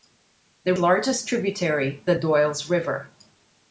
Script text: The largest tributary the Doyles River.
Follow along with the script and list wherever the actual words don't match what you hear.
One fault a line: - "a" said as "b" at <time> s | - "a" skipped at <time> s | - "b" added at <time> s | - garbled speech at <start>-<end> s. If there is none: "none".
none